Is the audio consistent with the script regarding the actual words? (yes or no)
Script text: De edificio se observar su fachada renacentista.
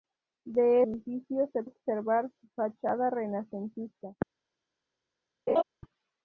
yes